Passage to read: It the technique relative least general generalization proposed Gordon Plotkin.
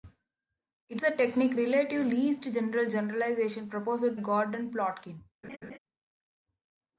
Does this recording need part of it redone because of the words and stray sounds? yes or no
yes